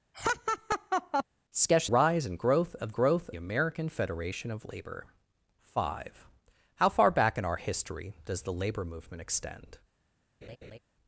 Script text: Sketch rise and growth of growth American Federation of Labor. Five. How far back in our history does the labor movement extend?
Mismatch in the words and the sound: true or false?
true